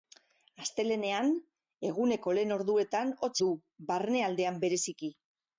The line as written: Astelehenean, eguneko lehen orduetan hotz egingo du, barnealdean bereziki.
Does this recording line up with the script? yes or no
no